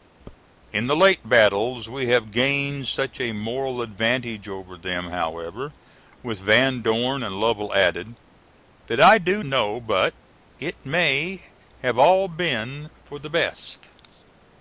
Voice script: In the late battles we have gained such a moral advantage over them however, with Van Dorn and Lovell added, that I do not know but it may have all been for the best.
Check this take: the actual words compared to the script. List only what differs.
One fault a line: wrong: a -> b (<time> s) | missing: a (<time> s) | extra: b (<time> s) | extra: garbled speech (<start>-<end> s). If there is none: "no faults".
missing: not (9.4 s)